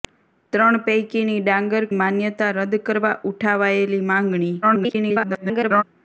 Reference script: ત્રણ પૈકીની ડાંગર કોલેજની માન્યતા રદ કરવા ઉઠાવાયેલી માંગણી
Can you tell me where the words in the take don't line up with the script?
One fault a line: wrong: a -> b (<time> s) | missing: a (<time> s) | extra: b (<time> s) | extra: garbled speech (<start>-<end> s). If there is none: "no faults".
missing: કોલેજની (1.9 s)
extra: garbled speech (4.6-5.8 s)